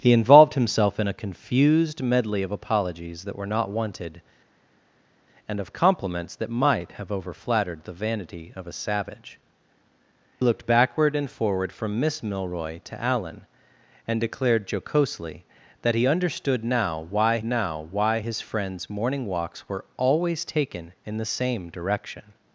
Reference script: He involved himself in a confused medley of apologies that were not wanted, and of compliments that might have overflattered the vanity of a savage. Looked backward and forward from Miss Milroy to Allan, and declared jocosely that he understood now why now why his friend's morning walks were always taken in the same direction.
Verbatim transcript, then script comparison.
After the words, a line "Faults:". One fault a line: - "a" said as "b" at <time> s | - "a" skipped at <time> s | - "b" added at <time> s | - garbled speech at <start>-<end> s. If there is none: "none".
He involved himself in a confused medley of apologies that were not wanted, and of compliments that might have overflattered the vanity of a savage. Looked backward and forward from Miss Milroy to Allan, and declared jocosely that he understood now why now why his friend's morning walks were always taken in the same direction.
Faults:
none